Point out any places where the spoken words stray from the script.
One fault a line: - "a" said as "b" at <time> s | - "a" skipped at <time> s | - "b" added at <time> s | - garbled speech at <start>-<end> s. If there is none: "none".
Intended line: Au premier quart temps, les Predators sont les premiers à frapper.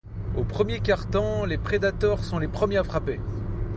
none